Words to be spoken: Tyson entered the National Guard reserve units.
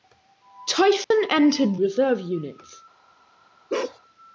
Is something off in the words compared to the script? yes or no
yes